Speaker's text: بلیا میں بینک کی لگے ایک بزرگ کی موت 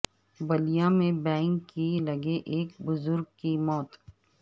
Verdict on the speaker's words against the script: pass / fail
pass